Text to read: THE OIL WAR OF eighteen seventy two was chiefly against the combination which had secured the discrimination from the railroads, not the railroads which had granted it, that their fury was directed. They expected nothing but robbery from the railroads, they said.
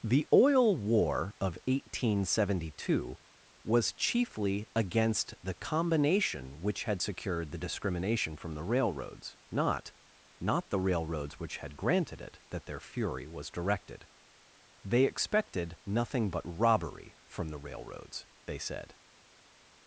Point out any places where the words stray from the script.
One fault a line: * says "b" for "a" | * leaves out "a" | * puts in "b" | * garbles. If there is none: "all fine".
* puts in "not"